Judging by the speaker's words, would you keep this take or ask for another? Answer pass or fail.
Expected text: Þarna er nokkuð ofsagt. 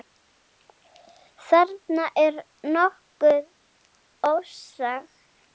pass